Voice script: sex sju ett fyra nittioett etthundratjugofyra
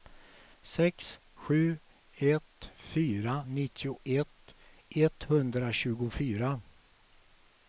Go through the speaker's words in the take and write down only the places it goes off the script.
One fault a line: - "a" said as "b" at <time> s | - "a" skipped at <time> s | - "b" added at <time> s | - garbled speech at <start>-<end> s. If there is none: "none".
none